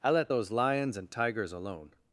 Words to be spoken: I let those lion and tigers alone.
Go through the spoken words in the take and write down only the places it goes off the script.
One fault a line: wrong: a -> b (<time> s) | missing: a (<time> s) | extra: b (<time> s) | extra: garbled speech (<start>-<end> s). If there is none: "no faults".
wrong: lion -> lions (0.5 s)